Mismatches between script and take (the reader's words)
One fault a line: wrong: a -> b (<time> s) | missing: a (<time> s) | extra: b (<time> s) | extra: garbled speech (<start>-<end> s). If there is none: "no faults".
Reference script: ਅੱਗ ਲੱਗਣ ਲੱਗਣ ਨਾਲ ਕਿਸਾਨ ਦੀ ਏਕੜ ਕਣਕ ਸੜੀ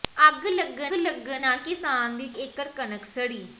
no faults